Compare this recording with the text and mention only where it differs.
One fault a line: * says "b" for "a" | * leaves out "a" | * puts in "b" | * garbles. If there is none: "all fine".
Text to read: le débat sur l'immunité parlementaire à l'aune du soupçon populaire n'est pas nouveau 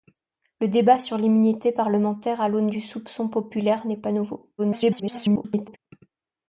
* garbles